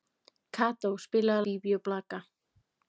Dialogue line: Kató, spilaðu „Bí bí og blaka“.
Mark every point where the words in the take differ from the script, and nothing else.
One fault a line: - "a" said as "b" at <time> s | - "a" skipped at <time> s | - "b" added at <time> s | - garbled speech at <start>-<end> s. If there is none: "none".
none